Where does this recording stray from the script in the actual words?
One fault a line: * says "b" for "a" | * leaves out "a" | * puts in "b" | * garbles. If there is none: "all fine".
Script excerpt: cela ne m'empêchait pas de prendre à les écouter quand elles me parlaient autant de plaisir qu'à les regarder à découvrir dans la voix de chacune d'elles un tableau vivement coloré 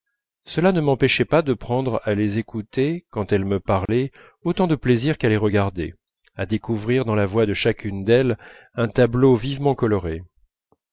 all fine